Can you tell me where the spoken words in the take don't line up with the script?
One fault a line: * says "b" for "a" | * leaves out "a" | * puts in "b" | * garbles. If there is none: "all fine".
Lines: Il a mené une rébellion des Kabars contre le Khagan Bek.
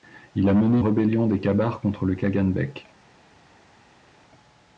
* leaves out "une"